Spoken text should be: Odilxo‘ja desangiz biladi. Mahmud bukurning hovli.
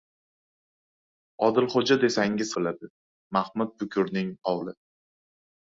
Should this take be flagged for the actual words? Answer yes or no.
no